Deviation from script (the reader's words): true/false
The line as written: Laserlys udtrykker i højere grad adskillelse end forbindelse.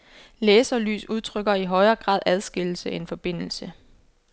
false